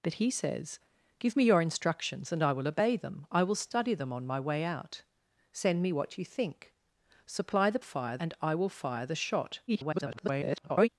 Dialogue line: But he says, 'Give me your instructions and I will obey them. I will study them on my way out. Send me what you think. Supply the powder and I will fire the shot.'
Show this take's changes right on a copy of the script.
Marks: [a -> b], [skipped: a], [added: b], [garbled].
But he says, 'Give me your instructions and I will obey them. I will study them on my way out. Send me what you think. Supply the [powder -> fire] and I will fire the shot.' [garbled]